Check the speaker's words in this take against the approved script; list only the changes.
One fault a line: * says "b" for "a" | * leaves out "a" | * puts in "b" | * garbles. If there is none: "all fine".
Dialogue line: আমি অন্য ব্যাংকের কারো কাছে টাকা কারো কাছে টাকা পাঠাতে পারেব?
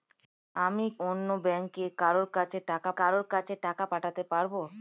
all fine